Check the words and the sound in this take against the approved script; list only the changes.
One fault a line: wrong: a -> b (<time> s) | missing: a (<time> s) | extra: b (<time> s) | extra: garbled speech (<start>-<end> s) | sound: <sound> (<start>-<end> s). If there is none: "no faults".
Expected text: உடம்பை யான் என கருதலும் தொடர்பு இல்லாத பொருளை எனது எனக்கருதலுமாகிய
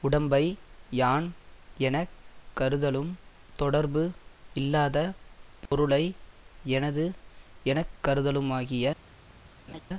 sound: dropout (5.7-5.7 s)
sound: laugh (9.7-9.8 s)